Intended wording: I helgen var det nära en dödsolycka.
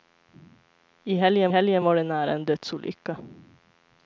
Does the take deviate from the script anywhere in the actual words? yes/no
yes